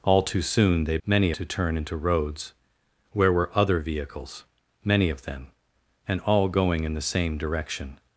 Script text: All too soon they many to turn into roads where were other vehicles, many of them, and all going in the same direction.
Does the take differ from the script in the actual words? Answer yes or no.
no